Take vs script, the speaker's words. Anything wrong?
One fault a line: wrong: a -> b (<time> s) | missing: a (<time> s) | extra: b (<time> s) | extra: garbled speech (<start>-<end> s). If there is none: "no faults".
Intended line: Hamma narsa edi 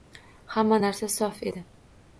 extra: sof (1.2 s)